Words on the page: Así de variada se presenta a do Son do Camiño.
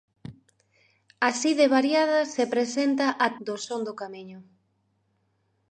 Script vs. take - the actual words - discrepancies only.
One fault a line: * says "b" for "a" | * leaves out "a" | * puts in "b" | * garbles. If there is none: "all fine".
all fine